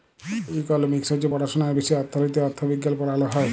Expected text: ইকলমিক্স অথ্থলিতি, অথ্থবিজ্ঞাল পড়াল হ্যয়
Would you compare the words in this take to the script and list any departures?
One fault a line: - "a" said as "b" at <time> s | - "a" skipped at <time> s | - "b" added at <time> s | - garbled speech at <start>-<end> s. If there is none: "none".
- "হছে পড়াশুলার বিষয়" added at 1.1 s